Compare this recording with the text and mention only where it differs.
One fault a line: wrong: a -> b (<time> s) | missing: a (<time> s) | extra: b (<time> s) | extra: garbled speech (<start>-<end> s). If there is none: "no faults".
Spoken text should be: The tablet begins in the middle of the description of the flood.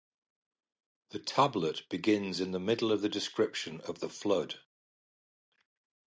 no faults